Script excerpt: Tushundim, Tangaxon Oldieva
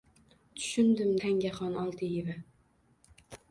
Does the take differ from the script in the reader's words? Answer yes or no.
no